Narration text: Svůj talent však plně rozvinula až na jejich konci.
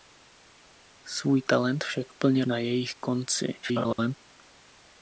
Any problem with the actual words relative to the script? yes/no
yes